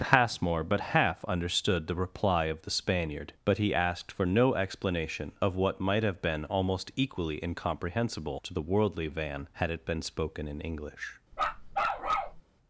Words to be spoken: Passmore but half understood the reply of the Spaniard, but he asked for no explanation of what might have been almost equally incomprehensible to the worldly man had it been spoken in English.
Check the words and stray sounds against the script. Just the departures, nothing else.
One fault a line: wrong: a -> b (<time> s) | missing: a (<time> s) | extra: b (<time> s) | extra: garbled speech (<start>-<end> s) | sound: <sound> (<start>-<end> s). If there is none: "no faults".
wrong: man -> van (9.1 s)
sound: bark (11.3-12.4 s)